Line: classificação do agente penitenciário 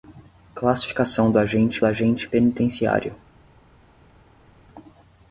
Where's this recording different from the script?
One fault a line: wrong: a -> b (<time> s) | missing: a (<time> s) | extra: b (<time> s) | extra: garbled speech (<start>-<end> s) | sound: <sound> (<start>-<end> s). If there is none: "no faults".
extra: agente (1.8 s)